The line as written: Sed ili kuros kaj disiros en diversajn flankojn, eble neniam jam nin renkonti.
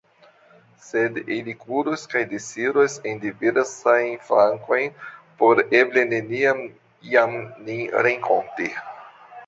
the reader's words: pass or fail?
fail